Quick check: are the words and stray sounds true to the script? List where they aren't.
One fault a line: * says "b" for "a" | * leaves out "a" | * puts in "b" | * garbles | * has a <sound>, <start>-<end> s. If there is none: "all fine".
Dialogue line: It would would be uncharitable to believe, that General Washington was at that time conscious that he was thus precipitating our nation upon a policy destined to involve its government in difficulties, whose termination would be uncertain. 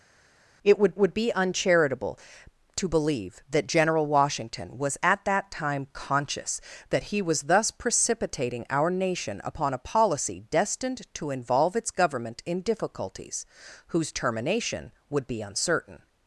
all fine